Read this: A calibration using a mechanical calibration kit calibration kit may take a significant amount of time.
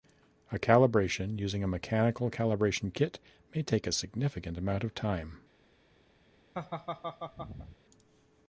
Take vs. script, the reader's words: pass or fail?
fail